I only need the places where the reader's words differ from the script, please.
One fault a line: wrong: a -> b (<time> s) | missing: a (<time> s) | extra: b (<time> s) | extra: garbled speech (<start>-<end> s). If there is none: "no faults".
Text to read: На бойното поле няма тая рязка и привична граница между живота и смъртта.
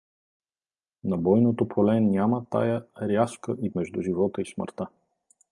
missing: привична граница (3.7 s)